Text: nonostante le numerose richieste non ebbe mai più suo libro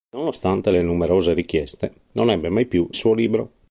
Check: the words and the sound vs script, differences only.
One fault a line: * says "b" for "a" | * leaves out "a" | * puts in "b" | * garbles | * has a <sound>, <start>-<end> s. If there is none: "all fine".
all fine